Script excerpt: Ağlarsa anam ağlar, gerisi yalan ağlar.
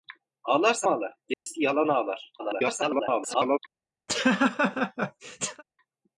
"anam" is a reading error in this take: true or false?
true